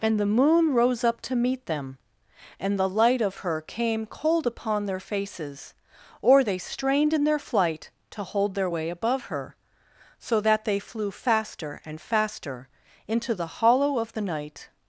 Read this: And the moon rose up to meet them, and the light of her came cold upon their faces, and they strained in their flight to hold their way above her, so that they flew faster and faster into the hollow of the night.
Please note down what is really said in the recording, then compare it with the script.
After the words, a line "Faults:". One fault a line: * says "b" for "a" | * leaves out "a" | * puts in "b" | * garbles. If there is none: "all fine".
And the moon rose up to meet them, and the light of her came cold upon their faces, or they strained in their flight to hold their way above her, so that they flew faster and faster into the hollow of the night.
Faults:
* says "or" for "and"